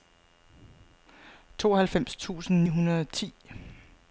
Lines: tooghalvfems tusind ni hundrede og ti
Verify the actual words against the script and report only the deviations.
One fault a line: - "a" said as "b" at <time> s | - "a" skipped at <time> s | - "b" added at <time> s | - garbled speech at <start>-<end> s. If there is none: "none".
- "ni" skipped at 2.6 s